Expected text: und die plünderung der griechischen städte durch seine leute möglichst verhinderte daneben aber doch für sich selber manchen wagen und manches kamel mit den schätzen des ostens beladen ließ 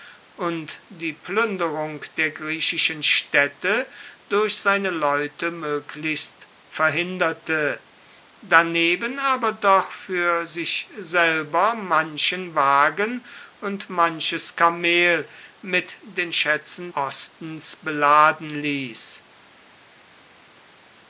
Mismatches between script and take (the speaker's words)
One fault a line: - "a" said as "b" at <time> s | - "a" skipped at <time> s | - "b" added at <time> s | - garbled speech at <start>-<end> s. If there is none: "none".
- "des" skipped at 16.9 s